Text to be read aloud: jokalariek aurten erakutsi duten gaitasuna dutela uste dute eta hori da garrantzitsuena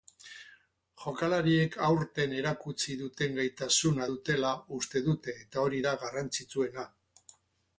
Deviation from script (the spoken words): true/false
false